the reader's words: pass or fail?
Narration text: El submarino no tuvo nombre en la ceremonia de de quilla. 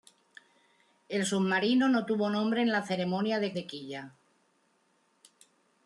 pass